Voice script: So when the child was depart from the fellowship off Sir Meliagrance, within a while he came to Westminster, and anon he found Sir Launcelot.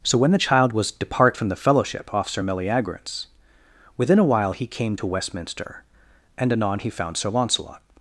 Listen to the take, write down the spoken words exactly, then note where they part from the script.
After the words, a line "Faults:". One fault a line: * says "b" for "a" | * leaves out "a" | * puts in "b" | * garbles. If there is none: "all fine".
So when the child was depart from the fellowship off Sir Meliagrance, within a while he came to Westminster, and anon he found Sir Launcelot.
Faults:
all fine